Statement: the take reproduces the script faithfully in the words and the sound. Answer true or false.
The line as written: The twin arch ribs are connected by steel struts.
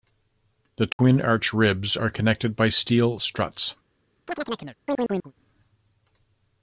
false